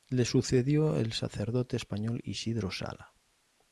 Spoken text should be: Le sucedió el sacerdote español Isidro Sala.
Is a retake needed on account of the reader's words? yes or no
no